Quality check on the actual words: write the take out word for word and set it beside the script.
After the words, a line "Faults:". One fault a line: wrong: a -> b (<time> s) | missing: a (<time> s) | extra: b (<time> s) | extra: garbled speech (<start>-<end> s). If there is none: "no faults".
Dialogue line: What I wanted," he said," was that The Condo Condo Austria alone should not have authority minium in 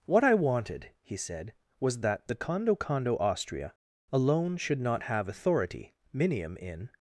What I wanted," he said," was that The Condo Condo Austria alone should not have authority minium in
Faults:
no faults